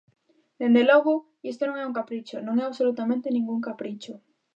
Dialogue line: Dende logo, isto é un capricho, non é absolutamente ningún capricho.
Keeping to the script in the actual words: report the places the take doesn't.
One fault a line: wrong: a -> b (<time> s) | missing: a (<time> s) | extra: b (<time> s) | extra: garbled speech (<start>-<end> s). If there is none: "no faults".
extra: non (1.6 s)